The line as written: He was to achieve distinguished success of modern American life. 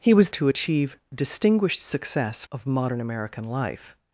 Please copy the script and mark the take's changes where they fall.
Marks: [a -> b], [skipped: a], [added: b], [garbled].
He was to achieve distinguished success of modern American life.